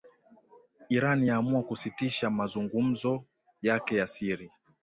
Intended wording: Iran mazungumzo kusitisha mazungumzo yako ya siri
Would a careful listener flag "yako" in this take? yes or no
yes